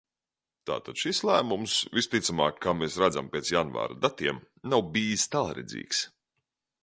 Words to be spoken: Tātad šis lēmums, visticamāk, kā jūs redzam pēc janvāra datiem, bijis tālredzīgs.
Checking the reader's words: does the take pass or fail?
fail